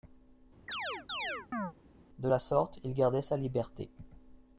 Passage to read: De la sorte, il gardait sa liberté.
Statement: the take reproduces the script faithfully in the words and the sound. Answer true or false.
false